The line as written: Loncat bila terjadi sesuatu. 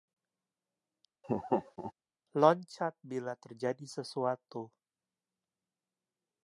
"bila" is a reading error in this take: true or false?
false